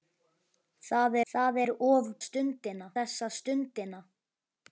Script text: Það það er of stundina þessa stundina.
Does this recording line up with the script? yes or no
yes